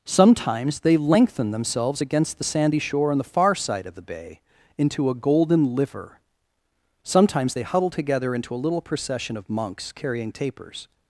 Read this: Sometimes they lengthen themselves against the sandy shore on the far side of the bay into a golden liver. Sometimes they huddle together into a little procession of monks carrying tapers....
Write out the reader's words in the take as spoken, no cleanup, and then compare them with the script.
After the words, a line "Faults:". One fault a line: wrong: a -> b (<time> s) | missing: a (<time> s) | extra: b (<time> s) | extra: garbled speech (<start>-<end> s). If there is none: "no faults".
Sometimes they lengthen themselves against the sandy shore on the far side of the bay into a golden liver. Sometimes they huddle together into a little procession of monks carrying tapers....
Faults:
no faults